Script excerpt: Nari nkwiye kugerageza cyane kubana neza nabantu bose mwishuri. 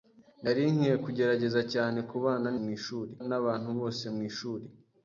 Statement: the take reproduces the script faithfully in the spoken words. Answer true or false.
false